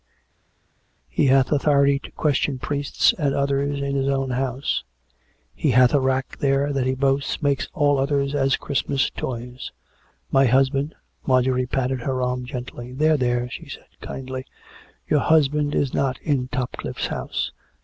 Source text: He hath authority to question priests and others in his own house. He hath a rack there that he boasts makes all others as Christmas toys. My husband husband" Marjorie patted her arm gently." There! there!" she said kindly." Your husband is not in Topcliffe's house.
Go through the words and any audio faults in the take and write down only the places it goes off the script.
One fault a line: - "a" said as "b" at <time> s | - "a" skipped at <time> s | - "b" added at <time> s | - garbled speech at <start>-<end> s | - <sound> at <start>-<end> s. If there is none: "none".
- "husband" skipped at 10.9 s